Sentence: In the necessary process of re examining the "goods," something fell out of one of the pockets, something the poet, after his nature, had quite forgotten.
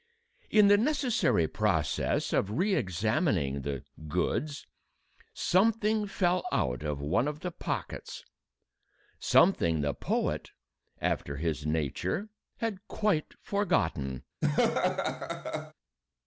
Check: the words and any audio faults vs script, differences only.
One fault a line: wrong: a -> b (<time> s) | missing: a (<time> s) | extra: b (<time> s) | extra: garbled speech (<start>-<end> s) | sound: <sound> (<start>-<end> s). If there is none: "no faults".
sound: laugh (14.4-15.7 s)